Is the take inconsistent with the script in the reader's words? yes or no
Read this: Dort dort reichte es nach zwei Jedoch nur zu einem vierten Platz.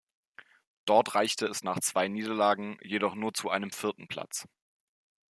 yes